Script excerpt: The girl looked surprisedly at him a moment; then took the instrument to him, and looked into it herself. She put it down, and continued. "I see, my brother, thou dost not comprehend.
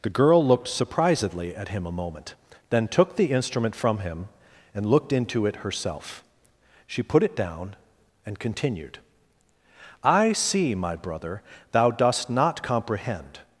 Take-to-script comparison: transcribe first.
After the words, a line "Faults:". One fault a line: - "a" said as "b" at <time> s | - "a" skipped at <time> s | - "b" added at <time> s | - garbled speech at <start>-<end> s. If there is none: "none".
The girl looked surprisedly at him a moment; then took the instrument from him, and looked into it herself. She put it down, and continued. "I see, my brother, thou dost not comprehend.
Faults:
- "to" said as "from" at 3.8 s